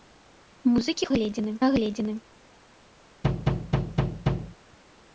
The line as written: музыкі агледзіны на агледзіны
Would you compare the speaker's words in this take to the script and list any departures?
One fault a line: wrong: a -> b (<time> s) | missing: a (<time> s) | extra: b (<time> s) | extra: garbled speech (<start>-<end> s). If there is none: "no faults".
no faults